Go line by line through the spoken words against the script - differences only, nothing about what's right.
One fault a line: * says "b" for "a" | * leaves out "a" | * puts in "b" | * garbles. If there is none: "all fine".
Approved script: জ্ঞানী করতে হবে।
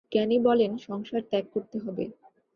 * puts in "বলেন সংসার ত্যাগ"